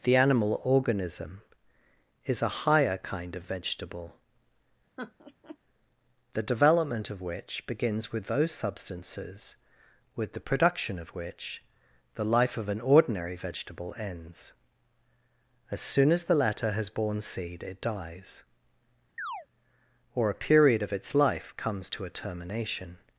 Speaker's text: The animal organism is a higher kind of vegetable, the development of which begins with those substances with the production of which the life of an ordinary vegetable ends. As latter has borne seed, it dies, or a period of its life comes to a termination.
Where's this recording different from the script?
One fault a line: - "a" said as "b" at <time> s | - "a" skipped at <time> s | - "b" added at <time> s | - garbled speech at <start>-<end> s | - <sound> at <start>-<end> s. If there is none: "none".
- laugh at 5.0-5.6 s
- "soon as the" added at 15.8 s
- chirp at 19.2-19.5 s